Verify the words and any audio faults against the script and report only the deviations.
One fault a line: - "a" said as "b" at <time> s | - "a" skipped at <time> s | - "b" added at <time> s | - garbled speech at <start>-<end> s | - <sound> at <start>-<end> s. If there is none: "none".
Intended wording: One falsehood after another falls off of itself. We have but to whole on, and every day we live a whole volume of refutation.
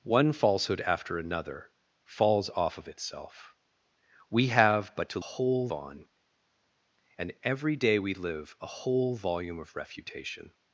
none